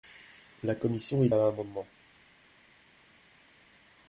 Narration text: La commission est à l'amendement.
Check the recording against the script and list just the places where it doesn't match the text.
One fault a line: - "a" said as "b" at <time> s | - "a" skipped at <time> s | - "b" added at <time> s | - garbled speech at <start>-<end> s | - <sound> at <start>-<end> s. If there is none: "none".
none